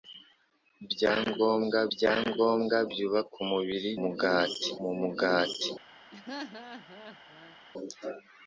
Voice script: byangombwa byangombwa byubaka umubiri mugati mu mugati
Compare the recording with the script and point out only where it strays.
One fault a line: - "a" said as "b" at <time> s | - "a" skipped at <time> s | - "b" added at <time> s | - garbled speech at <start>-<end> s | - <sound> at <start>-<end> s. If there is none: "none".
- laugh at 6.1-7.6 s